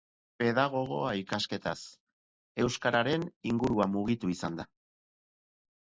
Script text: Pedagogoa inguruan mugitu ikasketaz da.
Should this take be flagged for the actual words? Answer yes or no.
yes